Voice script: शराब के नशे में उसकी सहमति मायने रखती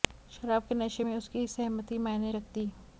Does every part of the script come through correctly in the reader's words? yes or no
yes